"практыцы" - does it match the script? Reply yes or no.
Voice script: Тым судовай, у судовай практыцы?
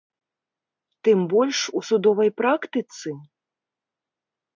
yes